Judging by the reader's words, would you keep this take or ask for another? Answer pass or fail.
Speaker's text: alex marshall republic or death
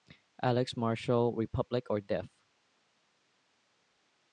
pass